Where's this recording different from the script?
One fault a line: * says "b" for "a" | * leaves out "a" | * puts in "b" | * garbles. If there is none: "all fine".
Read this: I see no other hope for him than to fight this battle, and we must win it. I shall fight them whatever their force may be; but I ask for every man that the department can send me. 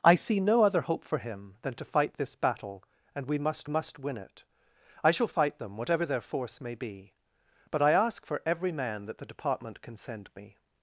* puts in "must"